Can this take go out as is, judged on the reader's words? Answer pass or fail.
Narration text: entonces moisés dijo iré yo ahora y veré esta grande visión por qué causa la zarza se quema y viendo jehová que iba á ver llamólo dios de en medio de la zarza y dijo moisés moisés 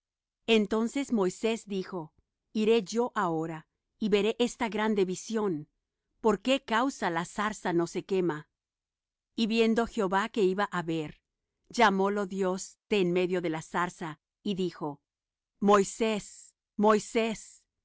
fail